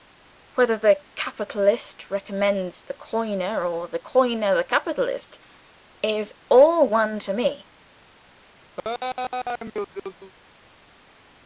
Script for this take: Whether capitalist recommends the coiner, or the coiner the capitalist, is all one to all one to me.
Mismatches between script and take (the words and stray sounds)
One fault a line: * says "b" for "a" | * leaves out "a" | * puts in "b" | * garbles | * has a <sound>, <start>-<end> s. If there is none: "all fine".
* puts in "the"
* leaves out "all one to"
* has a laugh, 8.8-10.3 s